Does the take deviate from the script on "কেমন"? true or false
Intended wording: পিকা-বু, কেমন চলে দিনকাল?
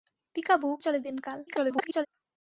true